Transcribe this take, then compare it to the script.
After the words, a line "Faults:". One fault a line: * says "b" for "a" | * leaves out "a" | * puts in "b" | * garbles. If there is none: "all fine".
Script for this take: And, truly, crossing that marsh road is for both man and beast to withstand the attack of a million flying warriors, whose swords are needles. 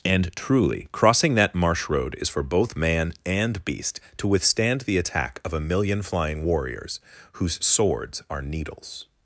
And, truly, crossing that marsh road is for both man and beast to withstand the attack of a million flying warriors, whose swords are needles.
Faults:
all fine